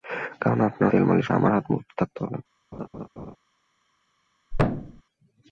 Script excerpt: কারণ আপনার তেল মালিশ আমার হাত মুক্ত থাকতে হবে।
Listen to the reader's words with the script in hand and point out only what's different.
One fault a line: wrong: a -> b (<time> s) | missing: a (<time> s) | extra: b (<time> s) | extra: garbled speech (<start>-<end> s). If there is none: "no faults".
no faults